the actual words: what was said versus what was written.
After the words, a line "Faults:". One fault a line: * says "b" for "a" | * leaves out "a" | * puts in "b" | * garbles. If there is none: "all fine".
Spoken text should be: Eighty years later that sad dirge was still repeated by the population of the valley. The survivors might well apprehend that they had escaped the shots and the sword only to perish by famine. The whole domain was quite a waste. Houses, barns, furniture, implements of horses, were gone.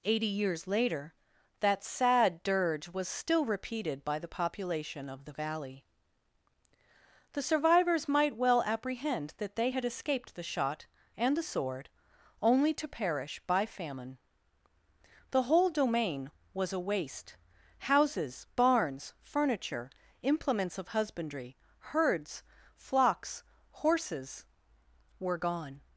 Eighty years later that sad dirge was still repeated by the population of the valley. The survivors might well apprehend that they had escaped the shot and the sword only to perish by famine. The whole domain was a waste. Houses, barns, furniture, implements of husbandry, herds, flocks, horses, were gone.
Faults:
* says "shot" for "shots"
* leaves out "quite"
* puts in "husbandry herds flocks"